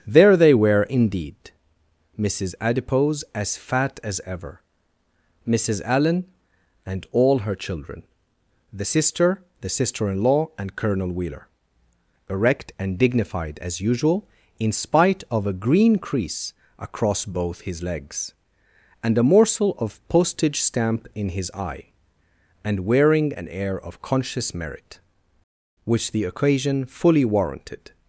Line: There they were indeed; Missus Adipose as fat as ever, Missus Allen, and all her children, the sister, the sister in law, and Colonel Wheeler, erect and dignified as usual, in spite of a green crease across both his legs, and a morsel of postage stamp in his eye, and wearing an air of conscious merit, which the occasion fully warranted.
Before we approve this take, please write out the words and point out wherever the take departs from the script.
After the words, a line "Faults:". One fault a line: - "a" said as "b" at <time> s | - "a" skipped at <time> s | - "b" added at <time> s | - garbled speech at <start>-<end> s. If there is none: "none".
There they were indeed; Missus Adipose as fat as ever, Missus Allen, and all her children, the sister, the sister in law, and Colonel Wheeler, erect and dignified as usual, in spite of a green crease across both his legs, and a morsel of postage stamp in his eye, and wearing an air of conscious merit, which the occasion fully warranted.
Faults:
none